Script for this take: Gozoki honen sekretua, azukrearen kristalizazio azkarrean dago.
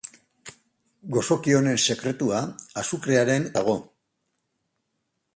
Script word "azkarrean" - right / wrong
wrong